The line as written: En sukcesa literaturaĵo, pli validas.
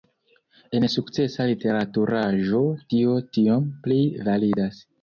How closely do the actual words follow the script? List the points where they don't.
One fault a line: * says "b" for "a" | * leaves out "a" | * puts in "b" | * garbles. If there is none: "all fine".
* puts in "tio tiom"